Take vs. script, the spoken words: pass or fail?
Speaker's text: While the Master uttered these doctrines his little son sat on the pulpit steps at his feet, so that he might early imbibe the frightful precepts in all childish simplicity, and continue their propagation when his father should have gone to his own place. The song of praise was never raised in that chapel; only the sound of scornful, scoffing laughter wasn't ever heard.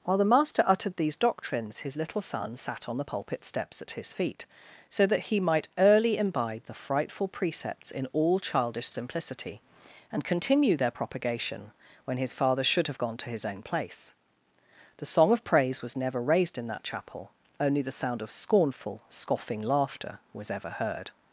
fail